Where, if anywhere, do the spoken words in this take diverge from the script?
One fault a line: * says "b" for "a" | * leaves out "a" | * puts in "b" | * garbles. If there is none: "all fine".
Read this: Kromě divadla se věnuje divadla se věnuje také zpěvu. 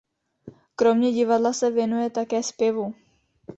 * leaves out "divadla se věnuje"